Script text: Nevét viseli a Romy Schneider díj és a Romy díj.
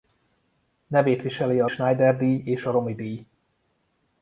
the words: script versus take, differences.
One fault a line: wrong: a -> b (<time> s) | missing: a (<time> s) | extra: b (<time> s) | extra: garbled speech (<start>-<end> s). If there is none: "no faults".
missing: Romy (1.7 s)